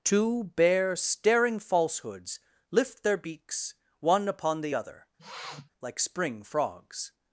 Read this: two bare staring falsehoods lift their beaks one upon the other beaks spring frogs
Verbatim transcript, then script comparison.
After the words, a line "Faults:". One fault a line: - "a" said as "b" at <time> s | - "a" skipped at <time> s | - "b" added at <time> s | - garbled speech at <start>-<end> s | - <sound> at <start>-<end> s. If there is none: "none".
two bare staring falsehoods lift their beaks one upon the other like spring frogs
Faults:
- sniff at 5.2-5.7 s
- "beaks" said as "like" at 5.8 s